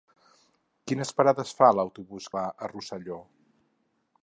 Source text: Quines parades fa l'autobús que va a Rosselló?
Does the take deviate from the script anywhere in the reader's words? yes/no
yes